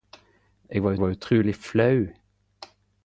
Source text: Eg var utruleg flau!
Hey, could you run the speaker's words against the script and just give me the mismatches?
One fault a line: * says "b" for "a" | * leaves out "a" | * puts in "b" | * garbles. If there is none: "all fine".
* puts in "var"